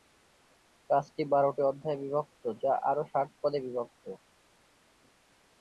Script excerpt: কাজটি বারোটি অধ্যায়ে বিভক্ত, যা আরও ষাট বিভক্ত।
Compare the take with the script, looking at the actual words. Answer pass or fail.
fail